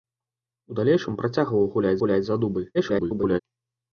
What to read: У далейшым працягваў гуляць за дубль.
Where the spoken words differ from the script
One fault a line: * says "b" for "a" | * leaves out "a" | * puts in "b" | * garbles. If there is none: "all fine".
* puts in "гуляць"
* garbles